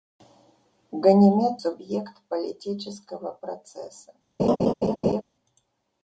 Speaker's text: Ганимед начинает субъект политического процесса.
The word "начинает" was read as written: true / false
false